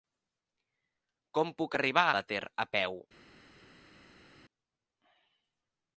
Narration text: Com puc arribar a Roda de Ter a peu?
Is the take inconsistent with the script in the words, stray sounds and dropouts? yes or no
yes